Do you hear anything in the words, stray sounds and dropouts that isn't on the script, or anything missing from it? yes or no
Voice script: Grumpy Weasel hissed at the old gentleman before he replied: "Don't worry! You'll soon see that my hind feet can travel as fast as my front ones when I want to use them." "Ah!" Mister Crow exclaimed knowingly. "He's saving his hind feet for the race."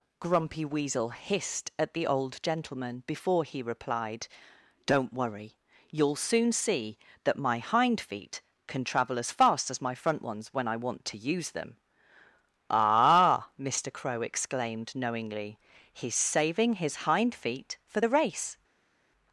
no